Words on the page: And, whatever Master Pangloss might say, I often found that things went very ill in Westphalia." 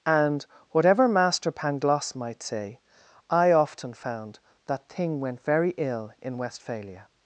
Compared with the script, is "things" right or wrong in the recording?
wrong